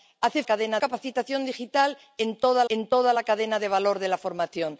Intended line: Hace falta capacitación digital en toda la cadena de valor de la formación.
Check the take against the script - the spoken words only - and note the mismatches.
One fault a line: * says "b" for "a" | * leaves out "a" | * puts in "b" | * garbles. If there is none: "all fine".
* says "cadena" for "falta"
* puts in "en toda"